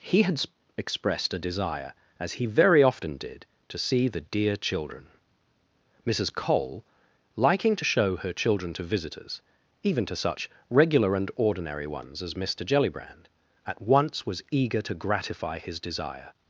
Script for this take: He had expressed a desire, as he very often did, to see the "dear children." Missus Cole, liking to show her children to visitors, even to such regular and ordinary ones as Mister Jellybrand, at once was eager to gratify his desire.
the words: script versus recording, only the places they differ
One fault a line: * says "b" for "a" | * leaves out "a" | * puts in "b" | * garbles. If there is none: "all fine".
all fine